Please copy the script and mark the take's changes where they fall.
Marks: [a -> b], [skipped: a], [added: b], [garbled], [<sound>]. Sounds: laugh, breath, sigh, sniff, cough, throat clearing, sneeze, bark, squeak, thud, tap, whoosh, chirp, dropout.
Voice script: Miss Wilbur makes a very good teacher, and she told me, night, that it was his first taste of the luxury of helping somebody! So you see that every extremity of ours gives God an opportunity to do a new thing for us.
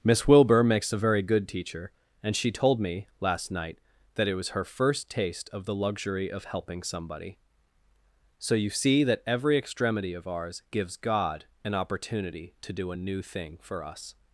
Miss Wilbur makes a very good teacher, and she told me, [added: last] night, that it was [his -> her] first taste of the luxury of helping somebody! So you see that every extremity of ours gives God an opportunity to do a new thing for us.